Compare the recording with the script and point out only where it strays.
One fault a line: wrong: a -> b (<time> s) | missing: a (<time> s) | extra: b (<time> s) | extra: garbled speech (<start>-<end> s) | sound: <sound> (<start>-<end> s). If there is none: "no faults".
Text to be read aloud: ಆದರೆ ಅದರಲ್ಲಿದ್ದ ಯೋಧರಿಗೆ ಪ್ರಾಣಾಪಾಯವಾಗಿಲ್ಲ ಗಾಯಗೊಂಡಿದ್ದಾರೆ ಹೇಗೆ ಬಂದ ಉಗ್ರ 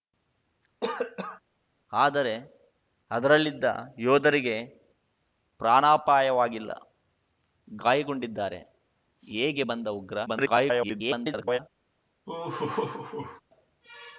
sound: cough (0.8-1.4 s)
extra: garbled speech (10.3-11.6 s)
sound: laugh (12.3-13.4 s)